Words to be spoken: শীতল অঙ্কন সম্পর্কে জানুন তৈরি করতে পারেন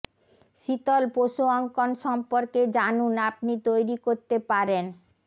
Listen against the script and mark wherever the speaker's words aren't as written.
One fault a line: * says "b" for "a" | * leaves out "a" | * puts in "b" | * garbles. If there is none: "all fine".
* puts in "পশু"
* puts in "আপনি"